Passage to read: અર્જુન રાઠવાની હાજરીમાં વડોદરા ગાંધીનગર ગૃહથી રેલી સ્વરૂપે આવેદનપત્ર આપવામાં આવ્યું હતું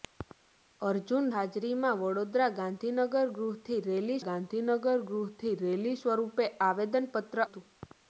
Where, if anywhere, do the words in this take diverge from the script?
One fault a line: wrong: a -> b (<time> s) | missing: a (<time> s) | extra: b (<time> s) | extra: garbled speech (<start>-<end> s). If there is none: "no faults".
missing: રાઠવાની (1.3 s)
extra: ગાંધીનગર ગૃહથી રેલી (4.2 s)
missing: આપવામાં આવ્યું (7.4 s)